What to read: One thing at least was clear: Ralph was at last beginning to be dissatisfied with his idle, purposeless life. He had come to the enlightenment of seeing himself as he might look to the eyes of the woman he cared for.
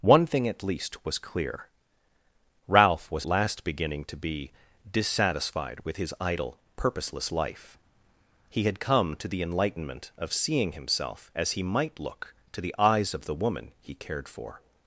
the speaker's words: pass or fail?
fail